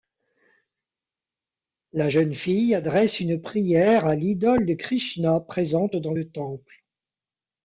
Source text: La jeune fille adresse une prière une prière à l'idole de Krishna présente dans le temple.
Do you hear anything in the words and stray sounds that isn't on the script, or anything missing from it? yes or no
yes